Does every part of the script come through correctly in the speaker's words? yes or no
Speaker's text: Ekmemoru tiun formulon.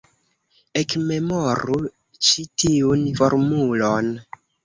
no